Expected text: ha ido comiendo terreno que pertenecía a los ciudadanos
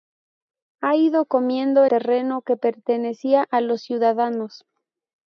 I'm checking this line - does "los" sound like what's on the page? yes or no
yes